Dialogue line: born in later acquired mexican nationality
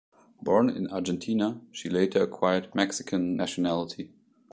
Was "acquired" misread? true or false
false